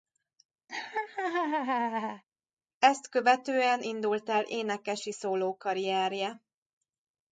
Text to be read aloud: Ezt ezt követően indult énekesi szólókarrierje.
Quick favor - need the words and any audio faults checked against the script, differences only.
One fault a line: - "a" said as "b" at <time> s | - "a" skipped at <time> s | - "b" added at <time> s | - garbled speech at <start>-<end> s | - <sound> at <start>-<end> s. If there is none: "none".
- laugh at 0.7-2.2 s
- "ezt" skipped at 3.1 s
- "el" added at 4.3 s